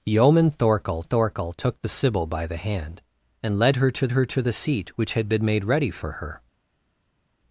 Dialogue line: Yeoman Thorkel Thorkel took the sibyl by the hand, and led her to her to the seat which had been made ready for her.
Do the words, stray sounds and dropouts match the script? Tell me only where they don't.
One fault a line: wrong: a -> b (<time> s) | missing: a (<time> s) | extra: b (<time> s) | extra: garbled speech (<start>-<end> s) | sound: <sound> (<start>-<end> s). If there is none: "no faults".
no faults